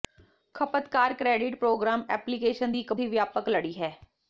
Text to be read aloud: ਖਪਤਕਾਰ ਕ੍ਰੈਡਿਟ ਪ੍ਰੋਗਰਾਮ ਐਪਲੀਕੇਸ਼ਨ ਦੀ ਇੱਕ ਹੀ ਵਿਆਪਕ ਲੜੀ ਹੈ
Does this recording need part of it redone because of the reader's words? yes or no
no